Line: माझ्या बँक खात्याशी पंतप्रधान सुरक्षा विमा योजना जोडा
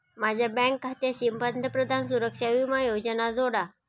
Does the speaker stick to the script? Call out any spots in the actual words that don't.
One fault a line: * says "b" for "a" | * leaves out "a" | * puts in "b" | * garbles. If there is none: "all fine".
all fine